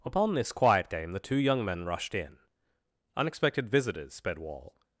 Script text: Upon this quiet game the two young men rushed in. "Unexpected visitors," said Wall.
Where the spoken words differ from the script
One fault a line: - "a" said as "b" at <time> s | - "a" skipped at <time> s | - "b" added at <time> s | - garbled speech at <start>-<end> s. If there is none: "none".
- "said" said as "sped" at 4.1 s